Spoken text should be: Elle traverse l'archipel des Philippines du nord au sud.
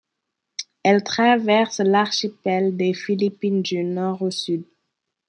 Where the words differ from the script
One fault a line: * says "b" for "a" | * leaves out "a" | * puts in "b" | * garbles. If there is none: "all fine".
all fine